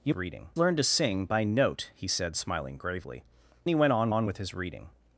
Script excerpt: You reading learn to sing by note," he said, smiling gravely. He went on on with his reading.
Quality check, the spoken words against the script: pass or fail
pass